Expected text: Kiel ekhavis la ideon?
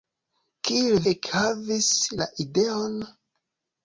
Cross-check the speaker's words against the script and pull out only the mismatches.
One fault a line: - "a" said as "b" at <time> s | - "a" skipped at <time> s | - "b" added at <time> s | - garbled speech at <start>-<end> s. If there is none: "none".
none